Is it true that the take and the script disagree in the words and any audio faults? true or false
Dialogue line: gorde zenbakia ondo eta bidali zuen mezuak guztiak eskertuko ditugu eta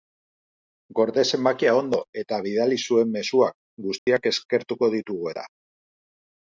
true